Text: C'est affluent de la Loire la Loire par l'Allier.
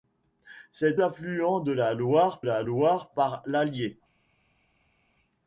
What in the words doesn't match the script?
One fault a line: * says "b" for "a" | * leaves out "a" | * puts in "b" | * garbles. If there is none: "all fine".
all fine